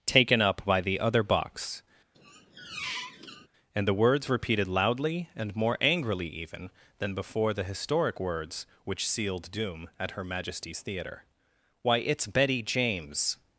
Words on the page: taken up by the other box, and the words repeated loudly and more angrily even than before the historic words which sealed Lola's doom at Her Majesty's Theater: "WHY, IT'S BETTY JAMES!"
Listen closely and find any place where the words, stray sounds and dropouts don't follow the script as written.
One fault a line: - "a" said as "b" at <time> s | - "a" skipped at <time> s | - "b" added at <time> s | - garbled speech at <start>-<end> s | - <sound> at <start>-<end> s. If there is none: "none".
- squeak at 2.1-3.5 s
- "Lola's" skipped at 9.5 s